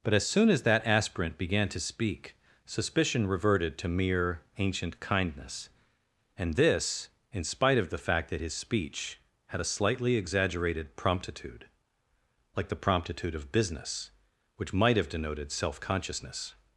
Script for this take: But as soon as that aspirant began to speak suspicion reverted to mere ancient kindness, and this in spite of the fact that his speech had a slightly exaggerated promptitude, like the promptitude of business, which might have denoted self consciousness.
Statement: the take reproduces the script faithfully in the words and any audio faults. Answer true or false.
true